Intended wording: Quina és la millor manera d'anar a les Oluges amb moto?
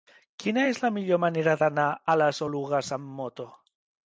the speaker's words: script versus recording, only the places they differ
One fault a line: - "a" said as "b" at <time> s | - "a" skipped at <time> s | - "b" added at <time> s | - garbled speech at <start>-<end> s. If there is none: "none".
none